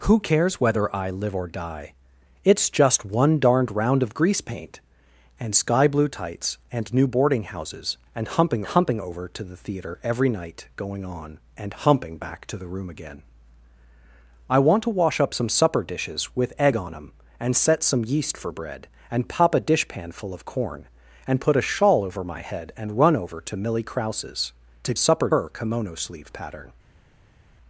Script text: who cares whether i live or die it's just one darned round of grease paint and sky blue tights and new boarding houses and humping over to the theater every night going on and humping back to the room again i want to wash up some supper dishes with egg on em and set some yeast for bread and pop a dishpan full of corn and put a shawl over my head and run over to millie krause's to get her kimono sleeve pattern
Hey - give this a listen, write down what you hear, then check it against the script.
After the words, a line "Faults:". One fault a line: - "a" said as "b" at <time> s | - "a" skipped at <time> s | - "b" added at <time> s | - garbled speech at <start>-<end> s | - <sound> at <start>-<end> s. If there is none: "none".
who cares whether i live or die it's just one darned round of grease paint and sky blue tights and new boarding houses and humping humping over to the theater every night going on and humping back to the room again i want to wash up some supper dishes with egg on em and set some yeast for bread and pop a dishpan full of corn and put a shawl over my head and run over to millie krause's to supper her kimono sleeve pattern
Faults:
- "humping" added at 8.7 s
- "get" said as "supper" at 24.9 s